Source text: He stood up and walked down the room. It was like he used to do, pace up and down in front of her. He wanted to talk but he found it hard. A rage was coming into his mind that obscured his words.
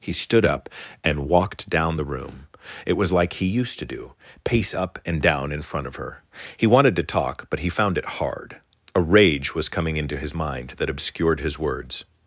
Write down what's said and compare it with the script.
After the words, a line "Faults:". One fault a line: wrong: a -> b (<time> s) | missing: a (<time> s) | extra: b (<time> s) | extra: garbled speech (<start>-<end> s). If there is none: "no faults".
He stood up and walked down the room. It was like he used to do, pace up and down in front of her. He wanted to talk but he found it hard. A rage was coming into his mind that obscured his words.
Faults:
no faults